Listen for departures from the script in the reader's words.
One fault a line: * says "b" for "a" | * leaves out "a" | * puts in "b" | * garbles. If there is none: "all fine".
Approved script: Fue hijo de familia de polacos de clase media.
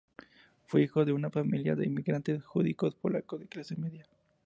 * puts in "una"
* puts in "inmigrantes judíos"